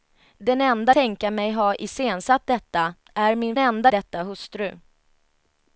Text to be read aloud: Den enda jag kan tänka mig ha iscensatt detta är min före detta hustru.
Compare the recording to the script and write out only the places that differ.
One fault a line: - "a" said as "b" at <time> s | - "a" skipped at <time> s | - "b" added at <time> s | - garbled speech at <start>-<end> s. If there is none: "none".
- "jag kan" skipped at 0.9 s
- "före" said as "enda" at 3.6 s